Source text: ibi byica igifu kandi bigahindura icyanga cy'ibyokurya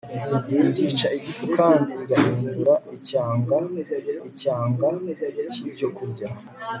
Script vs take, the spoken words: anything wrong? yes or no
yes